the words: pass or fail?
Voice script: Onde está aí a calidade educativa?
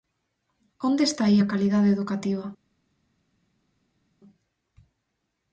pass